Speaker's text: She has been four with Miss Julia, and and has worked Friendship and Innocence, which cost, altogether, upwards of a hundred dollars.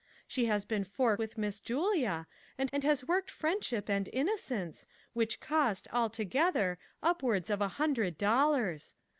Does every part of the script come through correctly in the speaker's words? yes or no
yes